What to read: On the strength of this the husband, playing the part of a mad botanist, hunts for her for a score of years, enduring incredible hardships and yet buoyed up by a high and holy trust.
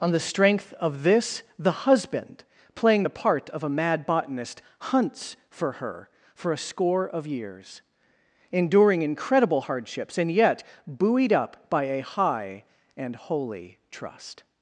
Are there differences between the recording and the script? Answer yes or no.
no